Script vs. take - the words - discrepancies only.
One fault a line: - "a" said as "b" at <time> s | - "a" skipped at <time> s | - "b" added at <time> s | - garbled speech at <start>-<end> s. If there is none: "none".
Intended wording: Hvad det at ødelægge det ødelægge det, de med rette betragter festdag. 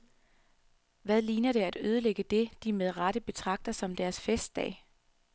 - "ligner" added at 1.2 s
- "ødelægge det" skipped at 2.5 s
- "som deres" added at 3.7 s